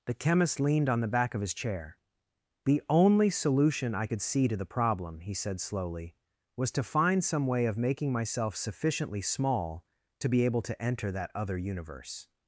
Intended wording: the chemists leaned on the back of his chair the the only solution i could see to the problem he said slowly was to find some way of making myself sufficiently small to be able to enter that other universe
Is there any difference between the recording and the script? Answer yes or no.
yes